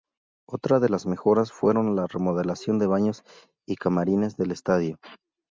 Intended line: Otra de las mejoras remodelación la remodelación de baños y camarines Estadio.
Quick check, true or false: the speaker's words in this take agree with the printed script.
false